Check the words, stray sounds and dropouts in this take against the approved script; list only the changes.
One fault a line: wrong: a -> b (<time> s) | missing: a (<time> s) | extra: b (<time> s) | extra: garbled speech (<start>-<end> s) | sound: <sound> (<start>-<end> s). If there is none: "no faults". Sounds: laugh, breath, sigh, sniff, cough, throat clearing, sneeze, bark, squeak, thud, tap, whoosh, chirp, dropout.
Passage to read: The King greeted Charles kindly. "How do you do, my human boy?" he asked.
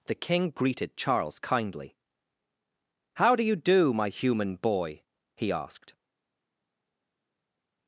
no faults